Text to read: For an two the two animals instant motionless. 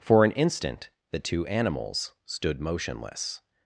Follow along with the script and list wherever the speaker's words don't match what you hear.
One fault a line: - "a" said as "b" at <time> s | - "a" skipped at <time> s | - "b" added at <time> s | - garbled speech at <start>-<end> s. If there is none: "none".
- "two" said as "instant" at 0.3 s
- "instant" said as "stood" at 2.2 s